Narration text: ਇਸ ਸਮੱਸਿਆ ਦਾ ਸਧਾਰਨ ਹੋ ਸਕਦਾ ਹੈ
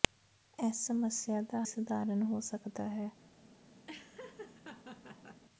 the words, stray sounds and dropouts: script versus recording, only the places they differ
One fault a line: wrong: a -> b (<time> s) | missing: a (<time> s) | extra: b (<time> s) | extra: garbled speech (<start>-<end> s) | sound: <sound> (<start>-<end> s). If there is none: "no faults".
sound: laugh (3.9-5.4 s)